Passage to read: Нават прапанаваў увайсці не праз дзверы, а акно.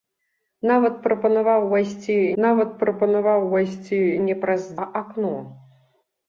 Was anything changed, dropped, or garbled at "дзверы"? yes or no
yes